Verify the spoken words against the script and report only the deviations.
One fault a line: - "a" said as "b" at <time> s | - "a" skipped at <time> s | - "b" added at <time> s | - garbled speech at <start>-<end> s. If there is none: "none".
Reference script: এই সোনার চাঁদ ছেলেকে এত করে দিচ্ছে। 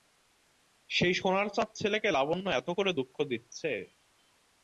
- "এই" said as "সেই" at 0.9 s
- "লাবণ্য" added at 2.1 s
- "দুঃখ" added at 3.0 s